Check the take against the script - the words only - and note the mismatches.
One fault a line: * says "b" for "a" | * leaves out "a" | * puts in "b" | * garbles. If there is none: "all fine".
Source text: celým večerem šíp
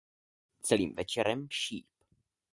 all fine